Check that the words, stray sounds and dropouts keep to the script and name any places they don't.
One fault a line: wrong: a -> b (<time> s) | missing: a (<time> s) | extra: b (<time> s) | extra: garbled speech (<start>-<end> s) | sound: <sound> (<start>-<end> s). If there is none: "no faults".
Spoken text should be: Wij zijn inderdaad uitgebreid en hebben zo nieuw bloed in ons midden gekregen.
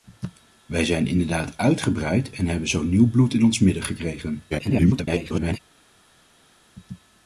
extra: garbled speech (4.5-5.6 s)